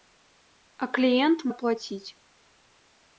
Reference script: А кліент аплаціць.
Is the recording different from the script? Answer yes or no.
no